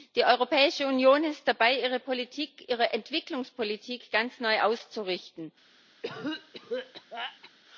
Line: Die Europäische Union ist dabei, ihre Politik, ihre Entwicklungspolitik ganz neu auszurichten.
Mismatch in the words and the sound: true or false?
true